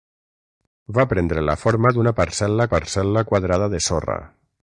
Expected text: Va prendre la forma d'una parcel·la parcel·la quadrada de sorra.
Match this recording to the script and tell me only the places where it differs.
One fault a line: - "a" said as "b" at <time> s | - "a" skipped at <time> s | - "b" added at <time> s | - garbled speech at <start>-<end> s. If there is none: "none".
none